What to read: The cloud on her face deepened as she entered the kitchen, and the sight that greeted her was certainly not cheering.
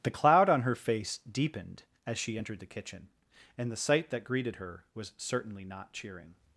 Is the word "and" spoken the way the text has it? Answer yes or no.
yes